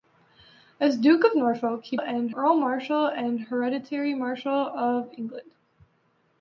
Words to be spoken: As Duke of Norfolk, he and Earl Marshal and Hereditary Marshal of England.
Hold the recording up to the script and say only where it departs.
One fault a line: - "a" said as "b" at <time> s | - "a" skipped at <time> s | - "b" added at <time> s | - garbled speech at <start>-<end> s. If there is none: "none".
none